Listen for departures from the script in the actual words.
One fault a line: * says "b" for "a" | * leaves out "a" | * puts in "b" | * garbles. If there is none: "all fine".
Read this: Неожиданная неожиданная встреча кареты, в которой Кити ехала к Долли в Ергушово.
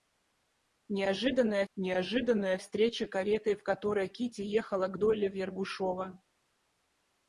all fine